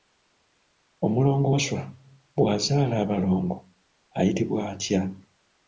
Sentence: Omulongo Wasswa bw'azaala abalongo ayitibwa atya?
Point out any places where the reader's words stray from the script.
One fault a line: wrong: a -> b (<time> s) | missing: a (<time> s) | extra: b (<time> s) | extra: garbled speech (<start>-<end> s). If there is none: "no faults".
no faults